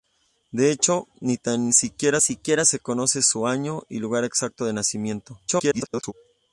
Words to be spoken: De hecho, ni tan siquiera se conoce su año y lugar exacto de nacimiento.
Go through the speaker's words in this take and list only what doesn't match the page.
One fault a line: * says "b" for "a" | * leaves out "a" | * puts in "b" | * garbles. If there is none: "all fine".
* puts in "siquiera"
* garbles